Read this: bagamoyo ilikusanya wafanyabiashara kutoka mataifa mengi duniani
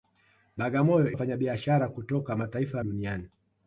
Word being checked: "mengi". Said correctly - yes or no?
no